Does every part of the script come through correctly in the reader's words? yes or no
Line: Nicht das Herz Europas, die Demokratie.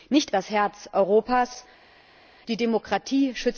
yes